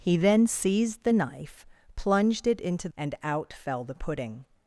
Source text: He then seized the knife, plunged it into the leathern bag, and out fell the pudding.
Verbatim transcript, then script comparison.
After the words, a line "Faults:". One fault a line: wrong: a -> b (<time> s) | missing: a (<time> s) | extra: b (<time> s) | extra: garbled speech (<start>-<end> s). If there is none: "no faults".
He then seized the knife, plunged it into and out fell the pudding.
Faults:
missing: the leathern bag (2.9 s)